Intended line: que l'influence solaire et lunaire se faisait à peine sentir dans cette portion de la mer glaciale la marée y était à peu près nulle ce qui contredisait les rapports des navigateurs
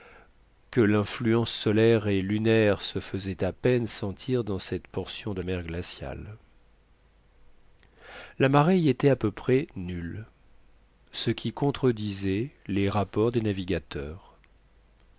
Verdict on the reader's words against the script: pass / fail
fail